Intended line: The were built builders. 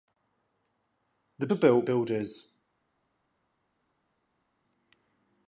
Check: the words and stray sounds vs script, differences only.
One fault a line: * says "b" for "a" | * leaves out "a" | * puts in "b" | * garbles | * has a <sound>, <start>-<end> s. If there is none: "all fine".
all fine